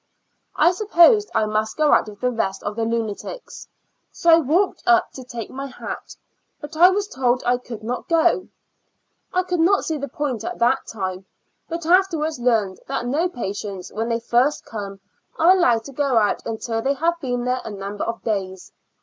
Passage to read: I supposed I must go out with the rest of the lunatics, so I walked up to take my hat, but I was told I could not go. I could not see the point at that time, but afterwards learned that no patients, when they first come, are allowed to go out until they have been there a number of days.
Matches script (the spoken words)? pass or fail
pass